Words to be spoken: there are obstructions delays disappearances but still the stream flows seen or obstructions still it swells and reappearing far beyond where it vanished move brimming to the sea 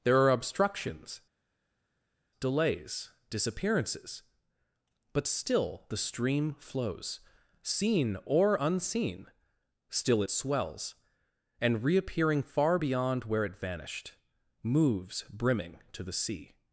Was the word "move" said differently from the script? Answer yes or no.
yes